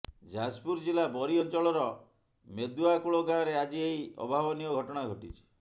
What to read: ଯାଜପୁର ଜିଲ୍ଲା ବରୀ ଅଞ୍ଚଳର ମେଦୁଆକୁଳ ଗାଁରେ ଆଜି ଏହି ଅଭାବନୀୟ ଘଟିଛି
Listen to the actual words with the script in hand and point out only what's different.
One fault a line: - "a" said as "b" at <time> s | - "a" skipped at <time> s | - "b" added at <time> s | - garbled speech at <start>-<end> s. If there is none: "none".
- "ଘଟଣା" added at 4.7 s